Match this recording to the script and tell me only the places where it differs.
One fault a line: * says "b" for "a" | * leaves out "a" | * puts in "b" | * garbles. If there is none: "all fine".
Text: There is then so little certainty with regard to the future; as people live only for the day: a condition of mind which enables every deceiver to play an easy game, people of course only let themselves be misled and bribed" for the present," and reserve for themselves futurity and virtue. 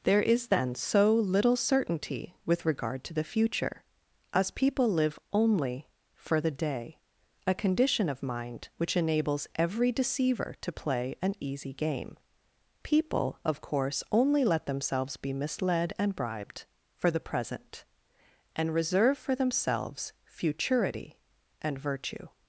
all fine